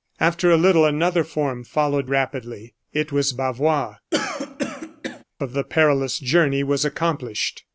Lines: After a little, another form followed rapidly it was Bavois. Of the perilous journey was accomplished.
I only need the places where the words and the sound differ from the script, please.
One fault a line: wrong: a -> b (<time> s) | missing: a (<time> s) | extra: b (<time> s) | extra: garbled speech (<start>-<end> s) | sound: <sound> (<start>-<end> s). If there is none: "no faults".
sound: throat clearing (4.1-5.2 s)